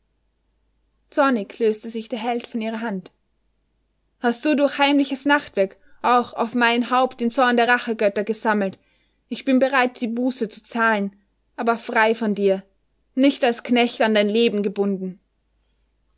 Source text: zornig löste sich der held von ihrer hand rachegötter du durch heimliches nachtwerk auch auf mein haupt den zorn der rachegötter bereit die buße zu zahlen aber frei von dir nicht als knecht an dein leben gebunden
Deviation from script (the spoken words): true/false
true